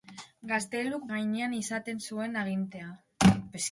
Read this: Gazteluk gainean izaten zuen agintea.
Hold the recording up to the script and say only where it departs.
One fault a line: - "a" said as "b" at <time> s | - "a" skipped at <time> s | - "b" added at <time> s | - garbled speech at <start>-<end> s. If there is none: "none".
none